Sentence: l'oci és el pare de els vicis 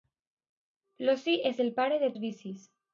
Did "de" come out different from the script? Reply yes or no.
no